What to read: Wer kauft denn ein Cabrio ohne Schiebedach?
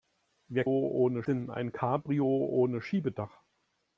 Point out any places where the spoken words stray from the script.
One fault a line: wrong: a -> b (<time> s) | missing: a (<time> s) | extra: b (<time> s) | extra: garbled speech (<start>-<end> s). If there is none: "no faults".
wrong: kauft -> ohne (0.7 s)